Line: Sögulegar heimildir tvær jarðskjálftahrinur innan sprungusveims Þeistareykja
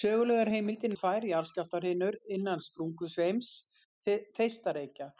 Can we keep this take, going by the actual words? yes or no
yes